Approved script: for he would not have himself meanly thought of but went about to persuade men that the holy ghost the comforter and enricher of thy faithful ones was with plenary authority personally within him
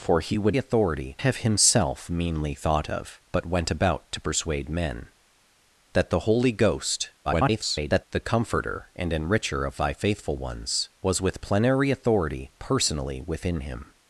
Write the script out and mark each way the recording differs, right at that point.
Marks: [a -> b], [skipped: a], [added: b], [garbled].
for he would [not -> authority] have himself meanly thought of but went about to persuade men that the holy ghost [garbled] the comforter and enricher of thy faithful ones was with plenary authority personally within him